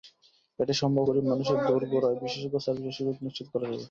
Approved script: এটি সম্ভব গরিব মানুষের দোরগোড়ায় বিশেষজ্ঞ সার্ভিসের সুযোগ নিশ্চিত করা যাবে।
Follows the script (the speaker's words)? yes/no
yes